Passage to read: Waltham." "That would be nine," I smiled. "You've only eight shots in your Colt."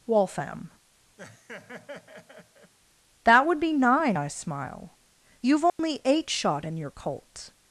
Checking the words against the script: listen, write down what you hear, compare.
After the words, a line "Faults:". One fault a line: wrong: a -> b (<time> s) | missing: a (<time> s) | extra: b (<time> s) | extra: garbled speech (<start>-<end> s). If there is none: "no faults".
Waltham." "That would be nine," I smile. "You've only eight shot in your Colt."
Faults:
wrong: smiled -> smile (4.3 s)
wrong: shots -> shot (6.3 s)